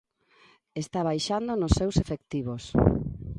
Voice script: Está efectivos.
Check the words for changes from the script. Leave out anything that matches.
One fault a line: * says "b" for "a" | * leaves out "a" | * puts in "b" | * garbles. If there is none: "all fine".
* puts in "baixando nos seus"